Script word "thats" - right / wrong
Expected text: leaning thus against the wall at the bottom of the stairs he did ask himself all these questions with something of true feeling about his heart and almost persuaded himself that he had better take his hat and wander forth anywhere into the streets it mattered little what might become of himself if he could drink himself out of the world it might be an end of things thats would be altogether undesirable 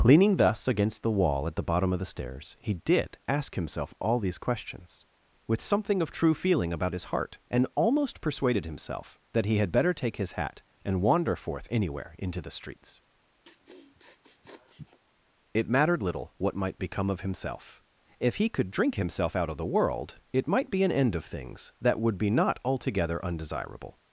wrong